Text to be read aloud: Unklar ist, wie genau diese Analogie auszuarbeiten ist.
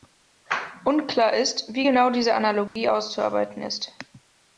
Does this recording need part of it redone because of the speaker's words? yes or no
no